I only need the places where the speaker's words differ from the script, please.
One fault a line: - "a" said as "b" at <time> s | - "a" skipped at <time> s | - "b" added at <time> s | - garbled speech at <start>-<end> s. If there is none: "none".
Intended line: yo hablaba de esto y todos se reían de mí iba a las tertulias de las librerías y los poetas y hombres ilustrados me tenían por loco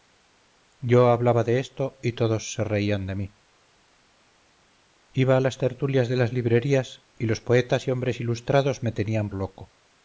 - "por" skipped at 9.3 s